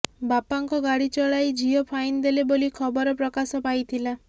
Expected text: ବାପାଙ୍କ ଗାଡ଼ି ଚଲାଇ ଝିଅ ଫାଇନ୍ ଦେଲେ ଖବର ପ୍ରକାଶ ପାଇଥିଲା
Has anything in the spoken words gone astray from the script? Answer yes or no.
yes